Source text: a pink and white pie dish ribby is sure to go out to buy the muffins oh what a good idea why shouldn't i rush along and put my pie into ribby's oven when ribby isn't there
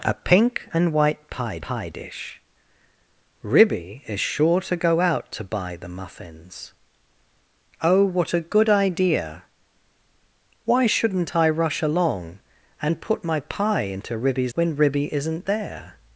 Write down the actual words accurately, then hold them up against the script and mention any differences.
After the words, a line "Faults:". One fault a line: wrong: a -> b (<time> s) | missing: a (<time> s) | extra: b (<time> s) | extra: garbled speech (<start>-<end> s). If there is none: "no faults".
a pink and white pie pie dish ribby is sure to go out to buy the muffins oh what a good idea why shouldn't i rush along and put my pie into ribby's when ribby isn't there
Faults:
extra: pie (1.6 s)
missing: oven (14.5 s)